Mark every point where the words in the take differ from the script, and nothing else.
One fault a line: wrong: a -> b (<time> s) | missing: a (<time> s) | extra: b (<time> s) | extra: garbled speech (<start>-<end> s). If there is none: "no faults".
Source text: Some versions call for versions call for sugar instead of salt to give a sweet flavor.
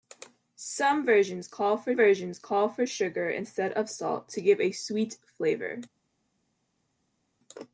no faults